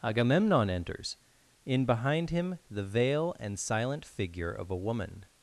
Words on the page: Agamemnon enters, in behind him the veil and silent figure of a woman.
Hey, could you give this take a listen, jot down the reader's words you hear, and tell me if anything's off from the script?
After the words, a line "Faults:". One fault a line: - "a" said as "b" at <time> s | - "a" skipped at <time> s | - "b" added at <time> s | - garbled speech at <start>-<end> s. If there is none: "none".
Agamemnon enters, in behind him the veil and silent figure of a woman.
Faults:
none